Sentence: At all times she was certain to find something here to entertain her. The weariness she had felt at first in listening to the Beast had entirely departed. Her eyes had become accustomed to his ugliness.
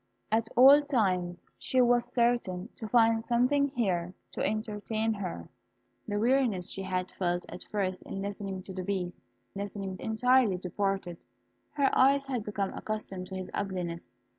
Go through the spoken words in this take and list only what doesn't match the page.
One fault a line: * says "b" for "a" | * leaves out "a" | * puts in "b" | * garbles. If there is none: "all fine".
* says "listening" for "had"